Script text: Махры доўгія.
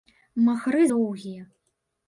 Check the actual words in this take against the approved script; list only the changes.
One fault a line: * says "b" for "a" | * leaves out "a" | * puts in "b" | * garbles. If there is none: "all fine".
all fine